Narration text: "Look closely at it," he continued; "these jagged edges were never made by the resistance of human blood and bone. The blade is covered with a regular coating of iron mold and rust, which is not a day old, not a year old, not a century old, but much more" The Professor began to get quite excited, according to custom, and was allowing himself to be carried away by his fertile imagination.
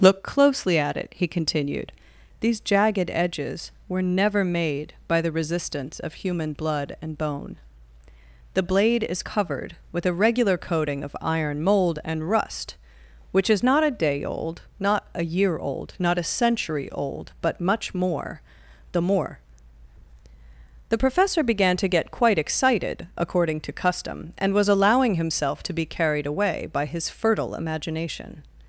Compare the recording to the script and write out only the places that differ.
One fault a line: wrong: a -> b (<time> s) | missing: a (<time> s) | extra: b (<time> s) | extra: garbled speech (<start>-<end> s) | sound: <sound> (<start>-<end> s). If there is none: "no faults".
extra: more the (19.0 s)